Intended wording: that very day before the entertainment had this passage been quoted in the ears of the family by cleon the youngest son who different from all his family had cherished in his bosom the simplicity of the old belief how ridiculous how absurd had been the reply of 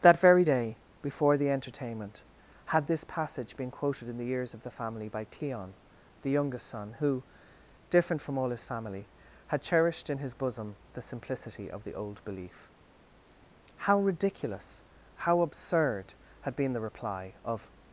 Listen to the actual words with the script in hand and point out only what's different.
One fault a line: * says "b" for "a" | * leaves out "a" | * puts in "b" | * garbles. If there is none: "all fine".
all fine